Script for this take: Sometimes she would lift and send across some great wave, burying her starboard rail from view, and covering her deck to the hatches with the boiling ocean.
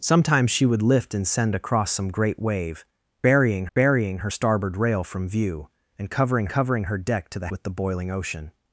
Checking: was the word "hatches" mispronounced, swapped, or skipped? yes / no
yes